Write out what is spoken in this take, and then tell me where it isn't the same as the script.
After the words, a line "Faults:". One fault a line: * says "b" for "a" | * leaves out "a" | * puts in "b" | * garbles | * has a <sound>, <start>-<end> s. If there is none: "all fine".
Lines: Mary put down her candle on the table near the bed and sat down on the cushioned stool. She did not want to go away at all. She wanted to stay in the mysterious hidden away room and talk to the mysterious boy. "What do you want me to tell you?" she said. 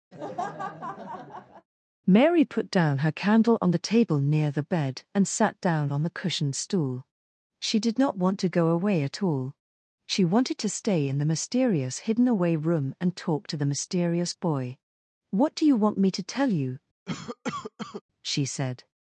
Mary put down her candle on the table near the bed and sat down on the cushioned stool. She did not want to go away at all. She wanted to stay in the mysterious hidden away room and talk to the mysterious boy. "What do you want me to tell you?" she said.
Faults:
* has a laugh, 0.1-1.7 s
* has a cough, 17.1-18.0 s